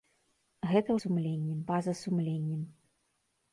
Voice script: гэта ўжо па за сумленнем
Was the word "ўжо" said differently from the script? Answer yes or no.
yes